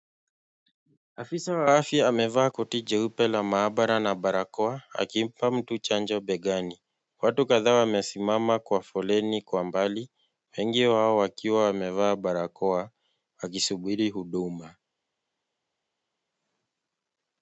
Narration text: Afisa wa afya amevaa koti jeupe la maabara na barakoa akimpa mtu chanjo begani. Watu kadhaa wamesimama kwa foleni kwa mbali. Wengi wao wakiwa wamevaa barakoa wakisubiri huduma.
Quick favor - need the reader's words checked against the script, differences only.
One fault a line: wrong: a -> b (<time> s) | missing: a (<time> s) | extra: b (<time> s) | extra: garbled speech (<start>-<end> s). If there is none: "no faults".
no faults